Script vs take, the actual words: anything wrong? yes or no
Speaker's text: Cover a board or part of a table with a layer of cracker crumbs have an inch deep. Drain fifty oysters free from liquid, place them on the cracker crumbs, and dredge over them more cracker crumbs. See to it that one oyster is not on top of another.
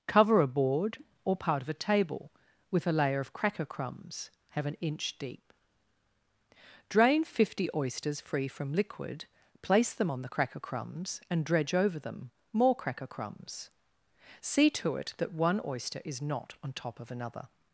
no